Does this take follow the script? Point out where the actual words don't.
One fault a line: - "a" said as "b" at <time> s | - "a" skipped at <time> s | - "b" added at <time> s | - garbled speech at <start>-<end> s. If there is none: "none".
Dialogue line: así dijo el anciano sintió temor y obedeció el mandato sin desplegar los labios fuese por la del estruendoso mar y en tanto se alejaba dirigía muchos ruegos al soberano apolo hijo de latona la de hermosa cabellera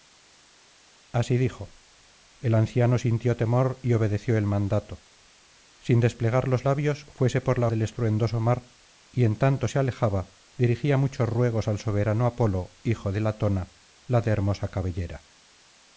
none